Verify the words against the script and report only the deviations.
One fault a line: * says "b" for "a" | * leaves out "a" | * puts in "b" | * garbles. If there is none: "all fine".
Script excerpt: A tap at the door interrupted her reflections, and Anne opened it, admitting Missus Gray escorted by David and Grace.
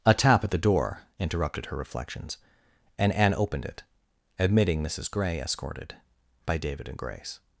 all fine